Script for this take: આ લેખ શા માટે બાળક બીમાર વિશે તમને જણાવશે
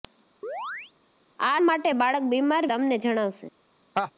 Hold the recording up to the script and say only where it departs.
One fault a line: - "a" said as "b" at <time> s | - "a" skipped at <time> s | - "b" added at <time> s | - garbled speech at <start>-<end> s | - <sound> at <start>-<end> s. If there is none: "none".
- chirp at 0.4-0.9 s
- "લેખ શા" skipped at 1.6 s
- "વિશે" skipped at 2.6 s
- laugh at 3.9-4.1 s